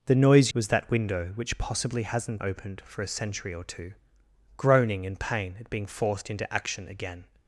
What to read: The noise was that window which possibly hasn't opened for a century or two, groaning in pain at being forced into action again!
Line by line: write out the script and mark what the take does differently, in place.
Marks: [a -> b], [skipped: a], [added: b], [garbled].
The noise was that window which possibly hasn't opened for a century or two, groaning in pain at being forced into action again!